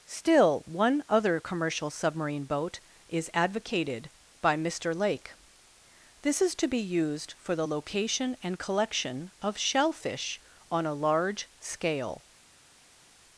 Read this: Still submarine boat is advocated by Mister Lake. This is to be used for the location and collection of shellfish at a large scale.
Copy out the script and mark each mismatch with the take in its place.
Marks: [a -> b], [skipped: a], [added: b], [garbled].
Still [added: one other commercial] submarine boat is advocated by Mister Lake. This is to be used for the location and collection of shellfish [at -> on] a large scale.